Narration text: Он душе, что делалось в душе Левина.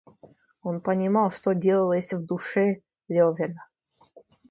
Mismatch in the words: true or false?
true